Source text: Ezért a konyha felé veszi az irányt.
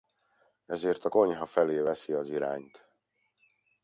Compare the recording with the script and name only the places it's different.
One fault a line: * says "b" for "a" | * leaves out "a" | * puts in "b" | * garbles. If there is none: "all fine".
all fine